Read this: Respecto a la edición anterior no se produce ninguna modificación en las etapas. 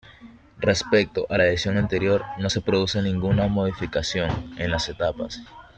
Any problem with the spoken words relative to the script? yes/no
no